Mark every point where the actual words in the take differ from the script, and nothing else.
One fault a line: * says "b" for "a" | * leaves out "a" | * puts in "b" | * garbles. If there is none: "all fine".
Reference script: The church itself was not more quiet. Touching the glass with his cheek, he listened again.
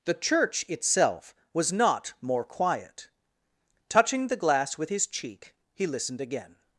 all fine